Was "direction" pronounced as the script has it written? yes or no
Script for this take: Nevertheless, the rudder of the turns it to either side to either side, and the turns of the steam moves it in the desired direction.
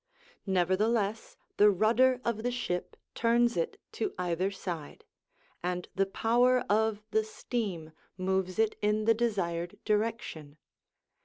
yes